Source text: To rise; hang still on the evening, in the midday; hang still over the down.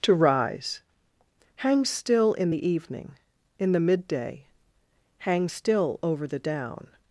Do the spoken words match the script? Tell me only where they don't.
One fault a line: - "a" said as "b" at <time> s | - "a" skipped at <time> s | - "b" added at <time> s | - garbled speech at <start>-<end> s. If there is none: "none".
- "on" said as "in" at 2.3 s